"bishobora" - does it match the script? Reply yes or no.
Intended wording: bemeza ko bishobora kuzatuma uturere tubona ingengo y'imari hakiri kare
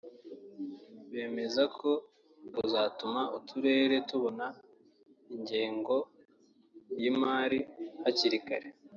no